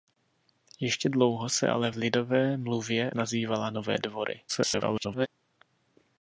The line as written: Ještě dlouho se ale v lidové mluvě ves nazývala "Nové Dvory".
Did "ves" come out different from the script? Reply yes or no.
yes